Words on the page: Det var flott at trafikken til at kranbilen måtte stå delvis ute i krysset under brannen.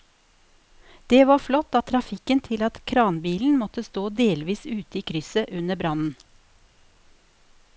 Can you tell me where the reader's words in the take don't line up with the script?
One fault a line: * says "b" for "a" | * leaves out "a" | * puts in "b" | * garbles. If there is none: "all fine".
all fine